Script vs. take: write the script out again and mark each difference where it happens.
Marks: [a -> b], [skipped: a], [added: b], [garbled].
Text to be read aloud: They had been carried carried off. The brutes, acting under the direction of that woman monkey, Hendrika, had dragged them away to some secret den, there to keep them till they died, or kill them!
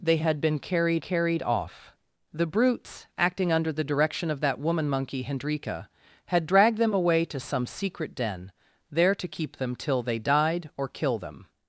They had been carried carried off. The brutes, acting under the direction of that woman monkey, Hendrika, had dragged them away to some secret den, there to keep them till they died, or kill them!